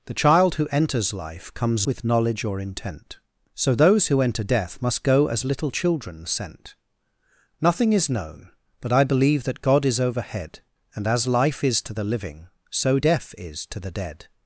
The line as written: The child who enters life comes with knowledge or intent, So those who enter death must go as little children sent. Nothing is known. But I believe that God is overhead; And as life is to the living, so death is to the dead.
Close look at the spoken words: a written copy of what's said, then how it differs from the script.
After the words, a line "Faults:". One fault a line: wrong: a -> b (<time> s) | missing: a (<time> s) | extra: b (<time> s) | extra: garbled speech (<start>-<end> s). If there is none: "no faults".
The child who enters life comes with knowledge or intent, So those who enter death must go as little children sent. Nothing is known. But I believe that God is overhead; And as life is to the living, so death is to the dead.
Faults:
no faults